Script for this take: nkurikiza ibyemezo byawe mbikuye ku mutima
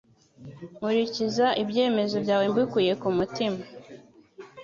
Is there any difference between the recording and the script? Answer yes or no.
no